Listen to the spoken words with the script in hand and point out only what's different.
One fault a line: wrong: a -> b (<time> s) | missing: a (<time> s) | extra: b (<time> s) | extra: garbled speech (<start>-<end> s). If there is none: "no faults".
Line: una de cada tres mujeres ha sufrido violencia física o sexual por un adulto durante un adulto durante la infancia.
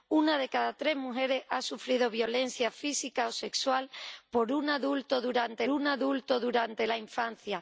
no faults